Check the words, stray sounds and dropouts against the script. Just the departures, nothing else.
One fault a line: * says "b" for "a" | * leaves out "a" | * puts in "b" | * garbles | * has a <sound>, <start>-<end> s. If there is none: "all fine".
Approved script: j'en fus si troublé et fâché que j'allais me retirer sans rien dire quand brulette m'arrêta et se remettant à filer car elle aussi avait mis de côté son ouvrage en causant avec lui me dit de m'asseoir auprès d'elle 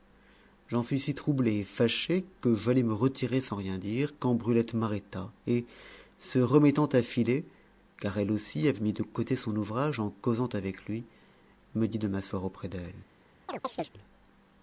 * has a chirp, 13.5-13.9 s